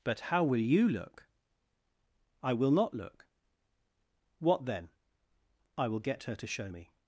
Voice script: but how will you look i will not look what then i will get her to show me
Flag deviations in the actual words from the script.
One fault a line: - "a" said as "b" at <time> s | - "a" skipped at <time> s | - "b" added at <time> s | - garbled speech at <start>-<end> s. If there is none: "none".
none